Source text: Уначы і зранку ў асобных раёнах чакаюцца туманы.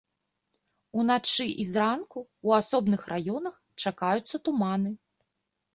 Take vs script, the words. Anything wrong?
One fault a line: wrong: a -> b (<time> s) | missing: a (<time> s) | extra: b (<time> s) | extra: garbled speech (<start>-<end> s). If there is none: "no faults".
no faults